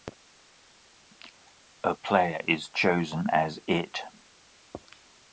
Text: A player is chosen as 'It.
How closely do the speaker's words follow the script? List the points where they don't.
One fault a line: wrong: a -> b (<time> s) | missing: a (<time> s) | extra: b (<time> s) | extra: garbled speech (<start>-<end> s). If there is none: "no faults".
no faults